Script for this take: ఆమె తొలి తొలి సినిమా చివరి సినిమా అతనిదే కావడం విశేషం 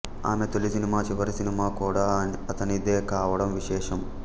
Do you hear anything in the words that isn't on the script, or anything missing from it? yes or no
yes